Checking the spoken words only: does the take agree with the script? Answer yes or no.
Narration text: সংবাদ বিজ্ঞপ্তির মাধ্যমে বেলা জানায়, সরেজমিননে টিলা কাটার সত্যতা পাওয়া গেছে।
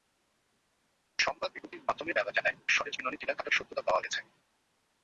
yes